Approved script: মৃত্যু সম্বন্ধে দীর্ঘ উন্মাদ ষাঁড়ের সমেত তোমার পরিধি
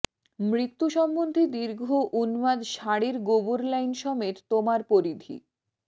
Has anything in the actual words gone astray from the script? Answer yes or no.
yes